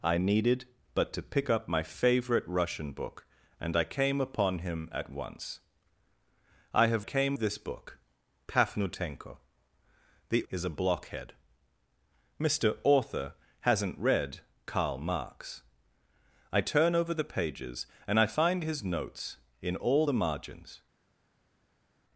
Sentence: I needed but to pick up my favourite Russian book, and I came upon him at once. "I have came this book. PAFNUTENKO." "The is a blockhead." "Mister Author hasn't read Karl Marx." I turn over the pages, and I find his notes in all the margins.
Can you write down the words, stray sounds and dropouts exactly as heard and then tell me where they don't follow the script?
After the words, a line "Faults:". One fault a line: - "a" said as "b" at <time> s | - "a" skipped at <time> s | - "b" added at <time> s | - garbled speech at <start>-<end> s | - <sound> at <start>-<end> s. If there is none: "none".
I needed but to pick up my favourite Russian book, and I came upon him at once. "I have came this book. PAFNUTENKO." "The is a blockhead." "Mister Author hasn't read Karl Marx." I turn over the pages, and I find his notes in all the margins.
Faults:
none